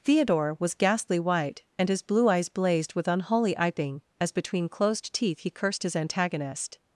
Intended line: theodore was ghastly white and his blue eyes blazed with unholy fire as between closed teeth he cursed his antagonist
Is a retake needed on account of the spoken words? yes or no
yes